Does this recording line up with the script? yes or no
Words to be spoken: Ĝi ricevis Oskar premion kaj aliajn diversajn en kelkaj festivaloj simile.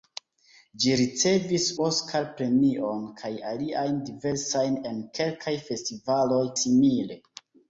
yes